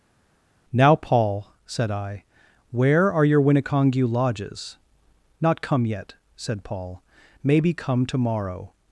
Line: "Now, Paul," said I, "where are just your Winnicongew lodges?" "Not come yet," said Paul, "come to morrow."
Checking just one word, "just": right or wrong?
wrong